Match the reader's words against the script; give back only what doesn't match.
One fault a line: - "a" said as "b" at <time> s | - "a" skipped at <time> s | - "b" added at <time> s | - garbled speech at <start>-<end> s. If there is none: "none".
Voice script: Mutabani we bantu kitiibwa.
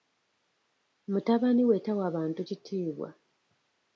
- "tawa" added at 1.8 s